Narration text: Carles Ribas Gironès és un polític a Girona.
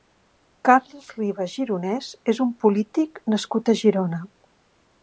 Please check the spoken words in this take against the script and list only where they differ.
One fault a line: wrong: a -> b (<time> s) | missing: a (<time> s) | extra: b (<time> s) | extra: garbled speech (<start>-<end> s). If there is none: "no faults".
extra: nascut (3.4 s)